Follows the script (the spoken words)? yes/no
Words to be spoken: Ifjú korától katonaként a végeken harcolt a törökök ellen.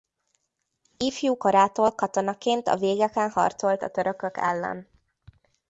yes